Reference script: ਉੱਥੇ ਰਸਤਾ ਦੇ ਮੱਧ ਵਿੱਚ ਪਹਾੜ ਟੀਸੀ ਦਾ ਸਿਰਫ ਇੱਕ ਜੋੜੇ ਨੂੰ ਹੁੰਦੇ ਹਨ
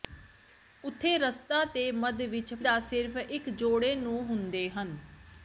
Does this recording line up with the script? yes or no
no